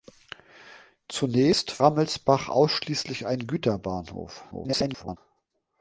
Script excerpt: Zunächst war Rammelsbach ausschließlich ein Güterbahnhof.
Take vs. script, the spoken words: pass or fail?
fail